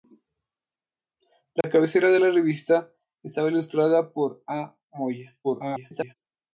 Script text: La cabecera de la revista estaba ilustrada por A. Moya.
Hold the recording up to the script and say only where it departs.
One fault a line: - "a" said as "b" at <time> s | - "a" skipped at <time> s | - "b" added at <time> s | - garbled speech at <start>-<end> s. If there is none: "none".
- garbled speech at 5.4-6.1 s